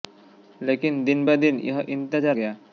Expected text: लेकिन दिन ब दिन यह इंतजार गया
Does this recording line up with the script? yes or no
yes